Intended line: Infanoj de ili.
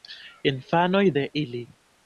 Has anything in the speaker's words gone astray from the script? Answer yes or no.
no